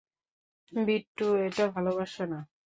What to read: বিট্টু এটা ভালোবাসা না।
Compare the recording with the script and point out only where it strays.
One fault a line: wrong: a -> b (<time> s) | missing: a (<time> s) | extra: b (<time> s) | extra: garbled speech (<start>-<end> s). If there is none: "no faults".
no faults